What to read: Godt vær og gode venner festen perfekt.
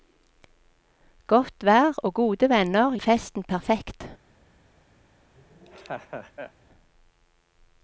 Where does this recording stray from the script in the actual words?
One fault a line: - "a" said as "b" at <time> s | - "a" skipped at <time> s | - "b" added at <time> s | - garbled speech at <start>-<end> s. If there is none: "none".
none